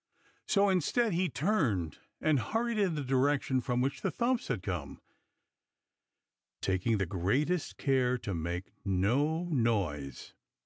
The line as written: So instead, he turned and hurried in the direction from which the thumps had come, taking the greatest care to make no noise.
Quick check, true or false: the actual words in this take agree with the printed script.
true